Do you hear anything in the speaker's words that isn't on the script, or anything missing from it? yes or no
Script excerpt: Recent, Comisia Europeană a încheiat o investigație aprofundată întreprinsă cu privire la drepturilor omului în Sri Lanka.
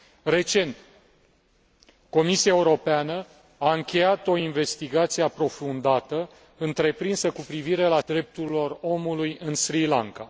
no